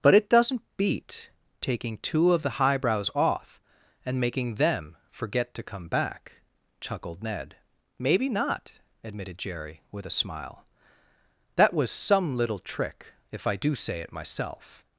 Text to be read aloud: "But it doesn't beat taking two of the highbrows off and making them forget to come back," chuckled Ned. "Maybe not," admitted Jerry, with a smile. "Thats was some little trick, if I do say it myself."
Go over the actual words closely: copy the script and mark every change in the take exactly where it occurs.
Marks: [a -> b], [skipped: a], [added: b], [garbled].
"But it doesn't beat taking two of the highbrows off and making them forget to come back," chuckled Ned. "Maybe not," admitted Jerry, with a smile. ["Thats -> That] was some little trick, if I do say it myself."